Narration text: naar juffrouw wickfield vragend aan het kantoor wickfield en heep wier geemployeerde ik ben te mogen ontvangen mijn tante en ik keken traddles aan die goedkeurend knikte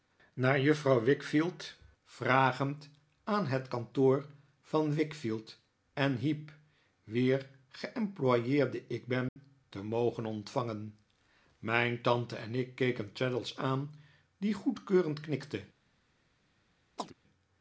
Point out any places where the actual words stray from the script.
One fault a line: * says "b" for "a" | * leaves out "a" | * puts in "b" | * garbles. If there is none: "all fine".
* puts in "van"